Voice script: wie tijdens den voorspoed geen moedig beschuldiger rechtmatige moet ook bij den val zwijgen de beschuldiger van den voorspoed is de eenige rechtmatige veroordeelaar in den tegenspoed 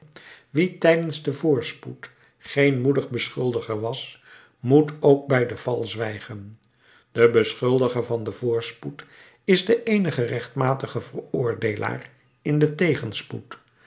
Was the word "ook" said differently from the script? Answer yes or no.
no